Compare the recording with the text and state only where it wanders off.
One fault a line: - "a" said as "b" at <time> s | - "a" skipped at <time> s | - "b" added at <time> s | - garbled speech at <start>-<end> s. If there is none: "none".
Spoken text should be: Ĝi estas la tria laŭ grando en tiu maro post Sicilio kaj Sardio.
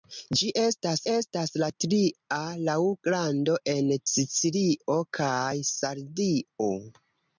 - "estas" added at 1.1 s
- "tiu maro post" skipped at 3.9 s